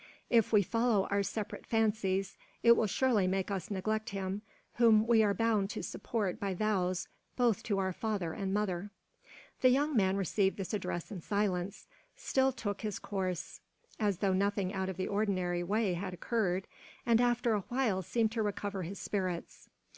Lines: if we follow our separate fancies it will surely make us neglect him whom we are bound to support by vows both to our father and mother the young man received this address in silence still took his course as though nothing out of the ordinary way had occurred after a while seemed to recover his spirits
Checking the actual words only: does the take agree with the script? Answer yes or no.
no